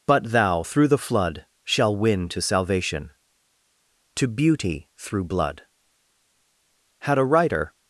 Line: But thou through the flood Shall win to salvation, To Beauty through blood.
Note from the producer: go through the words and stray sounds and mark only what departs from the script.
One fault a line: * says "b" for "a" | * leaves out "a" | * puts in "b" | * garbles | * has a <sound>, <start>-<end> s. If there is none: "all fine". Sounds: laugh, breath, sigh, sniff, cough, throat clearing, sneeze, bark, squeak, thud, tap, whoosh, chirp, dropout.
* puts in "Had a writer"